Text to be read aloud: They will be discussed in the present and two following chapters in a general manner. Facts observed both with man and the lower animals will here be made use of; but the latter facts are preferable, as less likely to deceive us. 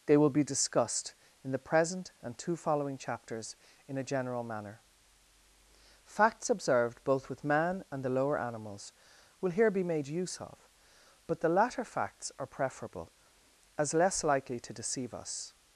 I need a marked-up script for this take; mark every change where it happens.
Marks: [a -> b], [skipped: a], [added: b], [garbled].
They will be discussed in the present and two following chapters in a general manner. Facts observed both with man and the lower animals will here be made use of; but the latter facts are preferable, as less likely to deceive us.